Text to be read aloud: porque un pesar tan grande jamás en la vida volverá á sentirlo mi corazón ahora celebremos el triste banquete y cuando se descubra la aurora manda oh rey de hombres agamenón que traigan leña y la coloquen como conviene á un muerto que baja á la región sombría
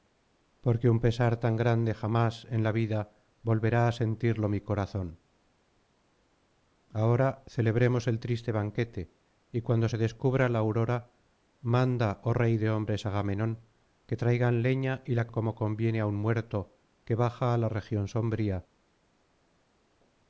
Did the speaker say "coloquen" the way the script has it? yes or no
no